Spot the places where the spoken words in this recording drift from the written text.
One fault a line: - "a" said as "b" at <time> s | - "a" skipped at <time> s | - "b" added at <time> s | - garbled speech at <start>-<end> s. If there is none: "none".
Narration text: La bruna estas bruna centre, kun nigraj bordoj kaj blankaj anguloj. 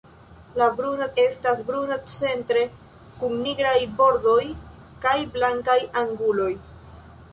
none